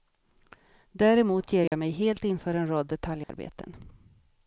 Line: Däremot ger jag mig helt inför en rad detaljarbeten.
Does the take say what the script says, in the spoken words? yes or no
yes